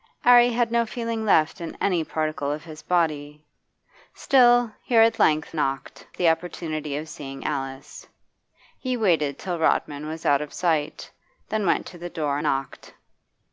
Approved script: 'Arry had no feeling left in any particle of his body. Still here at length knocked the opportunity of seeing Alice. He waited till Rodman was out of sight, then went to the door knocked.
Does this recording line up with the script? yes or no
yes